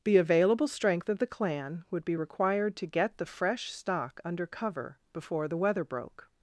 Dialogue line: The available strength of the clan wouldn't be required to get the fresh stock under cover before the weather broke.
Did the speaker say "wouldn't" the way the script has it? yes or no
no